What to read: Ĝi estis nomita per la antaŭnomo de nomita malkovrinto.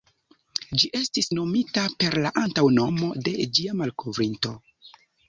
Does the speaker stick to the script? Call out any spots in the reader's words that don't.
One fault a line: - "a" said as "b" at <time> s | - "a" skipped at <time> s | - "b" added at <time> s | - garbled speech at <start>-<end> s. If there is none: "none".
- "nomita" said as "ĝia" at 3.6 s